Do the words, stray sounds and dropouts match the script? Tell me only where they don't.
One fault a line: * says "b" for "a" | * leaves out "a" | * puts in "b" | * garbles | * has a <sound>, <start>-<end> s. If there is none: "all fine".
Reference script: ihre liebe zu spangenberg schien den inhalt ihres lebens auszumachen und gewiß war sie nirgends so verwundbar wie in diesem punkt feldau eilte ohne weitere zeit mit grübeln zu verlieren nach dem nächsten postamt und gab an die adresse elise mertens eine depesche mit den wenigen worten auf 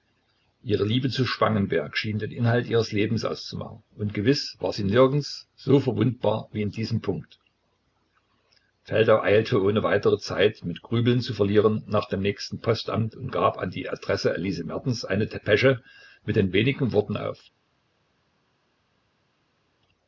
all fine